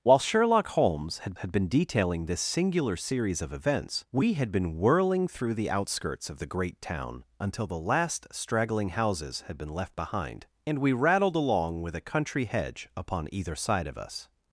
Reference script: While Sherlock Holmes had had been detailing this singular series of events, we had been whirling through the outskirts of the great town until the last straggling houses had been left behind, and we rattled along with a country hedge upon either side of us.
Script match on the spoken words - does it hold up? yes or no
yes